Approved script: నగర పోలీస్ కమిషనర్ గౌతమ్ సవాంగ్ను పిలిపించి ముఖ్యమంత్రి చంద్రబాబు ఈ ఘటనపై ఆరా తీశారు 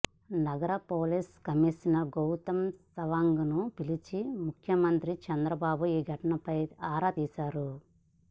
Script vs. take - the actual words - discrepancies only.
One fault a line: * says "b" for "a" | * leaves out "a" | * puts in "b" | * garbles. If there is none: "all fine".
all fine